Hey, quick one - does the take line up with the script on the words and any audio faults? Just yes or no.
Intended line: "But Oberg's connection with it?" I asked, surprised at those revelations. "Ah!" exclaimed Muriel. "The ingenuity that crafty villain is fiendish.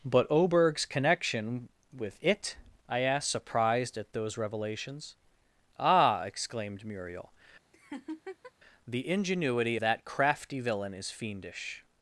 no